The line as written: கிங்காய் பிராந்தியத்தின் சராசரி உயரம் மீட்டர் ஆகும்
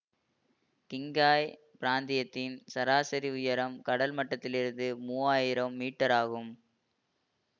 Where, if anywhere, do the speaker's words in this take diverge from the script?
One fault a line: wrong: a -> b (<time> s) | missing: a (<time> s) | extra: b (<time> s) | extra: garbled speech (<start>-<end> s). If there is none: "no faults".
extra: கடல் மட்டத்திலிருந்து மூவாயிரம் (3.8 s)